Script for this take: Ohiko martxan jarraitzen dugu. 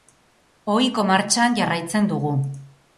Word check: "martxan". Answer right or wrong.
right